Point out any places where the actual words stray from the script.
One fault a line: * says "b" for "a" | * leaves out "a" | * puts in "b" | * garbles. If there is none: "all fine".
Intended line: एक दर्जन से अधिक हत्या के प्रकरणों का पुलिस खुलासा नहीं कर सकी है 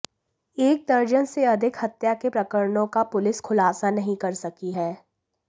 all fine